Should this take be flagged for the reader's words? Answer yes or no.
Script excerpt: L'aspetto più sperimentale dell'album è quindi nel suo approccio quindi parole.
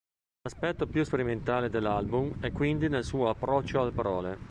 yes